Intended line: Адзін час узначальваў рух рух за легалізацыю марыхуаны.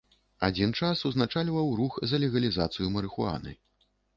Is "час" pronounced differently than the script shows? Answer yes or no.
no